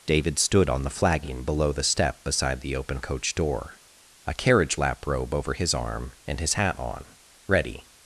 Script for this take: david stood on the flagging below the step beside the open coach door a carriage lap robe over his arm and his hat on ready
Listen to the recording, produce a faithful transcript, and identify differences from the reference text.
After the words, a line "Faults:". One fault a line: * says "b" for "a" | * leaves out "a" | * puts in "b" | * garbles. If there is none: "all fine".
david stood on the flagging below the step beside the open coach door a carriage lap robe over his arm and his hat on ready
Faults:
all fine